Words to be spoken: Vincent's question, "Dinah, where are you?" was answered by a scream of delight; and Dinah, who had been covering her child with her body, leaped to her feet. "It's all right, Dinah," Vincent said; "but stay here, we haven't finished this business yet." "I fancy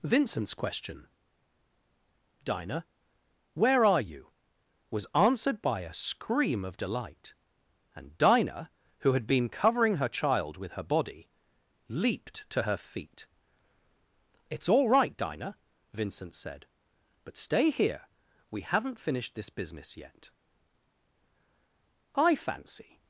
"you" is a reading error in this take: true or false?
false